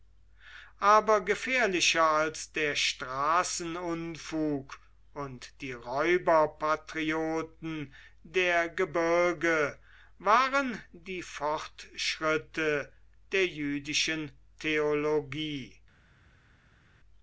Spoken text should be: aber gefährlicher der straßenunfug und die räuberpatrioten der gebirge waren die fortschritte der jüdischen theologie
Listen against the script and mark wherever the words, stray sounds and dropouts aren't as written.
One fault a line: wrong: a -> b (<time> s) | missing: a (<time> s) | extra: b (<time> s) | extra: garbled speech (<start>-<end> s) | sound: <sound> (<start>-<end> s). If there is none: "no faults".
extra: als (2.1 s)